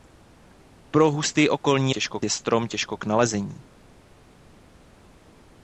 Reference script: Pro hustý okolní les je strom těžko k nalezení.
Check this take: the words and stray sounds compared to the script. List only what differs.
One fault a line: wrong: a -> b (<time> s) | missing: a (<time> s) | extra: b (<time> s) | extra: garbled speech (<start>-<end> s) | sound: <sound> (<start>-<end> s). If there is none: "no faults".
wrong: les -> těžko (1.9 s)